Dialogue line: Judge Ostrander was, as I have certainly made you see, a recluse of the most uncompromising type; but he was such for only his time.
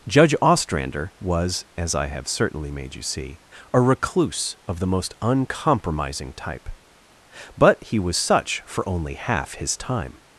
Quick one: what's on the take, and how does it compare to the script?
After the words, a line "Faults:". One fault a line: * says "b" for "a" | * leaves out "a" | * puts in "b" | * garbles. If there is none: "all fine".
Judge Ostrander was, as I have certainly made you see, a recluse of the most uncompromising type; but he was such for only half his time.
Faults:
* puts in "half"